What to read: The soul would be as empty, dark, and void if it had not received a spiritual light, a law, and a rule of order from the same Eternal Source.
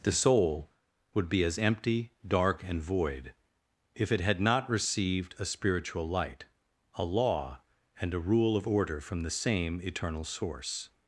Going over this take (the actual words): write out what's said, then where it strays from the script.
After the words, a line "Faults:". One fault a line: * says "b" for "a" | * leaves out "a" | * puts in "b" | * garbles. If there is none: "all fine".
The soul would be as empty, dark, and void if it had not received a spiritual light, a law, and a rule of order from the same Eternal Source.
Faults:
all fine